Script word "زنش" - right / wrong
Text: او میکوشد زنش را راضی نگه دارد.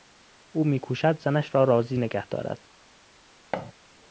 right